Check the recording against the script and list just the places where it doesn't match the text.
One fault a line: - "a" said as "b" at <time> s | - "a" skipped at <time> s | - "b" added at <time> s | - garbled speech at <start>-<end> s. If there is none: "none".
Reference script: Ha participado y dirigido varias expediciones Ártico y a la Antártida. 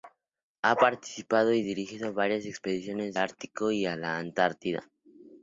none